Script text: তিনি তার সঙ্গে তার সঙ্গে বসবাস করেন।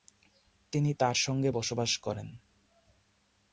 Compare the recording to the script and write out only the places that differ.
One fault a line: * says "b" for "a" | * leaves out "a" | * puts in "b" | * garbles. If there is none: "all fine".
* leaves out "তার সঙ্গে"